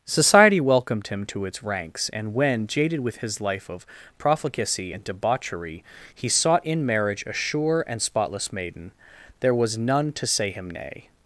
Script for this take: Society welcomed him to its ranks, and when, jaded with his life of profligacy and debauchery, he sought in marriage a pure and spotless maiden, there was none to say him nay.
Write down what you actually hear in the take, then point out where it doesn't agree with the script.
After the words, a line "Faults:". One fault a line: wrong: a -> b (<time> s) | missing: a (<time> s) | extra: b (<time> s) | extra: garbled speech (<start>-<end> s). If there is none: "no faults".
Society welcomed him to its ranks, and when, jaded with his life of profligacy and debauchery, he sought in marriage a sure and spotless maiden, there was none to say him nay.
Faults:
wrong: pure -> sure (7.3 s)